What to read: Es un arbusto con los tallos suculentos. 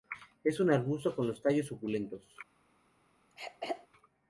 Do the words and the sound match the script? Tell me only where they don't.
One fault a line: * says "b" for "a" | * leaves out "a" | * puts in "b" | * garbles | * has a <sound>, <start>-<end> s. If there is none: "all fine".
* has a throat clearing, 3.3-3.9 s